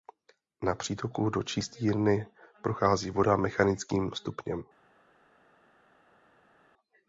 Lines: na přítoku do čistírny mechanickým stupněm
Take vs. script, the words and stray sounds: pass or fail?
fail